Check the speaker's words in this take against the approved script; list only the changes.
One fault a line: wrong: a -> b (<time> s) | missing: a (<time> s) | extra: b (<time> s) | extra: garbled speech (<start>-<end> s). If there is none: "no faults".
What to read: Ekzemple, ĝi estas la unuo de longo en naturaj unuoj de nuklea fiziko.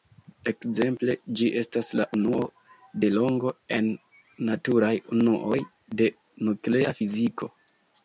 no faults